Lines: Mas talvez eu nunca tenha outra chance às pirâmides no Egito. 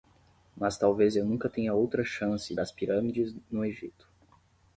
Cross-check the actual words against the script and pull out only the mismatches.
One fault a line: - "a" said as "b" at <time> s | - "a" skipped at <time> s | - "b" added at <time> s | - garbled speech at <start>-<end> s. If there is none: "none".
none